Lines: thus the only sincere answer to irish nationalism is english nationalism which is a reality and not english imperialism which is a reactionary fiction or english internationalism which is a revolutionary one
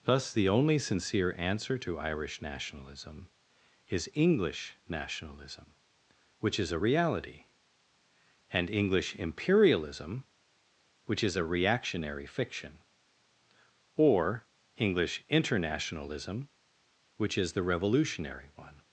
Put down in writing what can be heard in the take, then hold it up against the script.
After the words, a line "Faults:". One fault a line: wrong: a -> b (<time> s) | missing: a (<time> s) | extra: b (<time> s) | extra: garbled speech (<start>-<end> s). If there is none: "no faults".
thus the only sincere answer to irish nationalism is english nationalism which is a reality and english imperialism which is a reactionary fiction or english internationalism which is the revolutionary one
Faults:
missing: not (8.7 s)
wrong: a -> the (17.5 s)